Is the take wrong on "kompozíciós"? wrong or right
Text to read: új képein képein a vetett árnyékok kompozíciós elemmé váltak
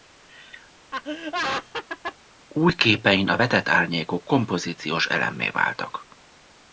right